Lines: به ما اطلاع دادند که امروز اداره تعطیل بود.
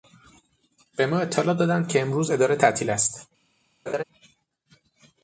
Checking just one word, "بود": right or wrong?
wrong